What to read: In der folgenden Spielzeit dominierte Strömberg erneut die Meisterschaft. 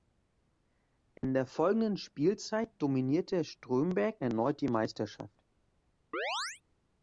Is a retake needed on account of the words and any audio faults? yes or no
yes